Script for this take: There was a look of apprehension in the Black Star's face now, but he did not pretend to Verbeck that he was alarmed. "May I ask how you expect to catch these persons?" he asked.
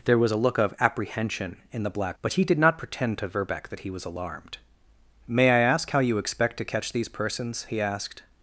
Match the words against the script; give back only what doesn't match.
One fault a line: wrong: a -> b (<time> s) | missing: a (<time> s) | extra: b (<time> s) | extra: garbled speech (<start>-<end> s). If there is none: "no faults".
missing: Star's face now (2.2 s)